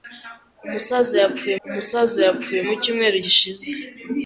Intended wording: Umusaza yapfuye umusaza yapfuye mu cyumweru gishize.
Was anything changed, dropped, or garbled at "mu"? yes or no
no